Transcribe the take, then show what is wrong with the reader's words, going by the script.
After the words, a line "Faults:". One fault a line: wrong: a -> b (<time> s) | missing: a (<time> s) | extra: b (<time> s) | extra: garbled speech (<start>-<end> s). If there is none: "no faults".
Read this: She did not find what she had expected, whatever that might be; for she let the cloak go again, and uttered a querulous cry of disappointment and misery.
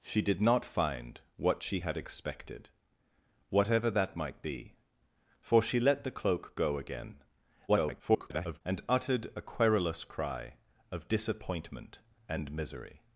She did not find what she had expected, whatever that might be; for she let the cloak go again, [garbled] and uttered a querulous cry of disappointment and misery.
Faults:
extra: garbled speech (7.7-8.6 s)